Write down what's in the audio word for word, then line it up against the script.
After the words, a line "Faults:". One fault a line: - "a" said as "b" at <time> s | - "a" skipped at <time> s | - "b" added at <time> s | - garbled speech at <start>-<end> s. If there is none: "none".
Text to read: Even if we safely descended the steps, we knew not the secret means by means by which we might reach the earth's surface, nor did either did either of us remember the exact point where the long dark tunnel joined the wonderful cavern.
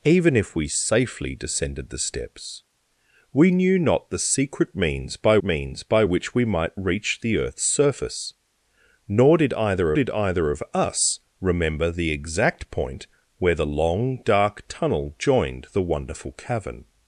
Even if we safely descended the steps, we knew not the secret means by means by which we might reach the earth's surface, nor did either did either of us remember the exact point where the long dark tunnel joined the wonderful cavern.
Faults:
none